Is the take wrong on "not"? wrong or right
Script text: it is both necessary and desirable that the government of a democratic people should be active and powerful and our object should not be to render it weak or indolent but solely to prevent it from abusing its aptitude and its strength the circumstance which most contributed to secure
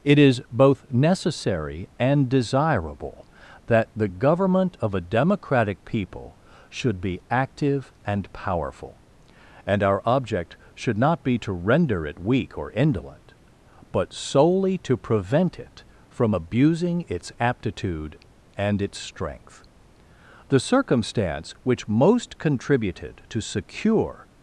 right